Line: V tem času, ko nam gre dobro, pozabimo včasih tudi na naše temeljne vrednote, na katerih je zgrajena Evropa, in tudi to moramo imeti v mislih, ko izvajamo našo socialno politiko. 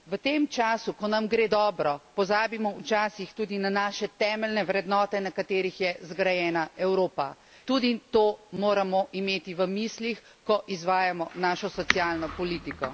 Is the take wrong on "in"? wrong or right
wrong